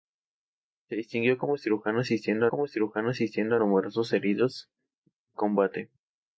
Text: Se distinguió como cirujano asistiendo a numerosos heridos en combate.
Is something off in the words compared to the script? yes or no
yes